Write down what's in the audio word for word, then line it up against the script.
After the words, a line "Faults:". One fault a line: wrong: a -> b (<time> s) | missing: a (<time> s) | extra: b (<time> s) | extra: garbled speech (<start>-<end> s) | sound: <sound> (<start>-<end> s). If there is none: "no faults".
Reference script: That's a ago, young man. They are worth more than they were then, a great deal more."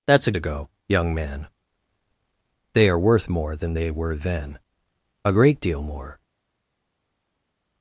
That's a ago, young man. They are worth more than they were then, a great deal more."
Faults:
no faults